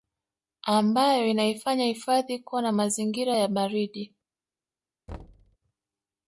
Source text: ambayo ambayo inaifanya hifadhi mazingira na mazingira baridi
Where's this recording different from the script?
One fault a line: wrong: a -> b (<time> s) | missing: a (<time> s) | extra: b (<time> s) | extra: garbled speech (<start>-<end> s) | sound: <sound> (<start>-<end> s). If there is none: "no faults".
missing: ambayo (1.3 s)
wrong: mazingira -> kuwa (2.4 s)
extra: ya (3.3 s)
sound: thud (5.1-5.6 s)